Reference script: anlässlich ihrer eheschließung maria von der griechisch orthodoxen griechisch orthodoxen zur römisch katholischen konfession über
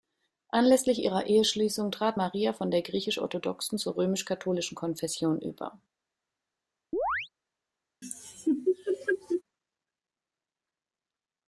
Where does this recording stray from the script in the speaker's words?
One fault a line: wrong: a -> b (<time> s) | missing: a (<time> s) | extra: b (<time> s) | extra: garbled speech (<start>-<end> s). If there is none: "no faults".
extra: trat (1.9 s)
missing: griechisch orthodoxen (3.8 s)